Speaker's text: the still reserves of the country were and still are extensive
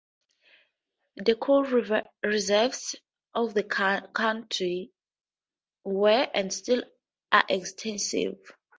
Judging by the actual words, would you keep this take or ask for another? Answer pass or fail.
fail